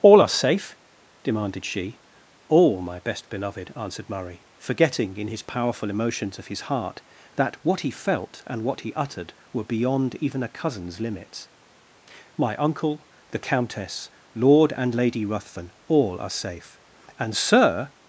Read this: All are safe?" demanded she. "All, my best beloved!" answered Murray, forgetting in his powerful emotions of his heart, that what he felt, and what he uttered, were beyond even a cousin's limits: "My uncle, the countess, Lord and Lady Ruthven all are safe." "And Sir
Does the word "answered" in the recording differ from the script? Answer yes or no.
no